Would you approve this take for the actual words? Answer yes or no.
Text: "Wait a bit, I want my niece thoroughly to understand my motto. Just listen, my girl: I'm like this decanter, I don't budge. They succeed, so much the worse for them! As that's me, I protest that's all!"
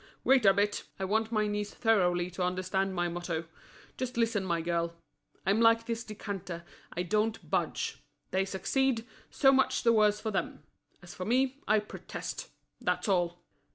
no